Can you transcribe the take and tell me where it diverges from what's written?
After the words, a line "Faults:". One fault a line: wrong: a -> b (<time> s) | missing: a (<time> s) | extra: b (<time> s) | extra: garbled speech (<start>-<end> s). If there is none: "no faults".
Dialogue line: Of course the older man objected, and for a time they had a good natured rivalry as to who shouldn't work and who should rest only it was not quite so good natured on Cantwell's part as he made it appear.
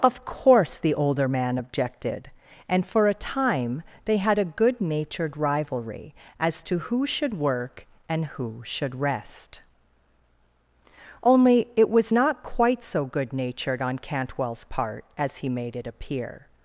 Of course the older man objected, and for a time they had a good natured rivalry as to who should work and who should rest only it was not quite so good natured on Cantwell's part as he made it appear.
Faults:
wrong: shouldn't -> should (7.1 s)